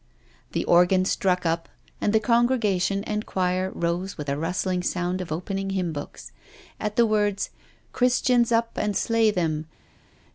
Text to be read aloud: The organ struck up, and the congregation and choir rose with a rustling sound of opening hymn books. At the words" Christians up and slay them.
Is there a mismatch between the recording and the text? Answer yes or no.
no